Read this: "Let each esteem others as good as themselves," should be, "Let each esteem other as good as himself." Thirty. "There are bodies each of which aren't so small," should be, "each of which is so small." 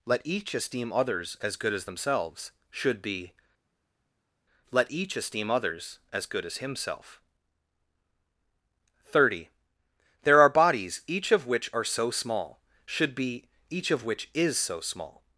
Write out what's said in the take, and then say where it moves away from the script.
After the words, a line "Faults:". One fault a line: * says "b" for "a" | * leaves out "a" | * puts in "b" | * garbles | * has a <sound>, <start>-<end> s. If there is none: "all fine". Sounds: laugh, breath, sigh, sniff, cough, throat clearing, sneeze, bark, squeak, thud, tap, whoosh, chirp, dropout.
"Let each esteem others as good as themselves," should be, "Let each esteem others as good as himself." Thirty. "There are bodies each of which are so small," should be, "each of which is so small."
Faults:
* says "others" for "other"
* says "are" for "aren't"